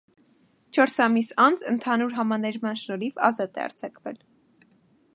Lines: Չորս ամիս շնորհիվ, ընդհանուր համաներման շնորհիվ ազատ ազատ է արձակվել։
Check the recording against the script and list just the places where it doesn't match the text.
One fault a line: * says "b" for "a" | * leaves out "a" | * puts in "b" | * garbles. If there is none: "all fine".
* says "անց" for "շնորհիվ"
* leaves out "ազատ"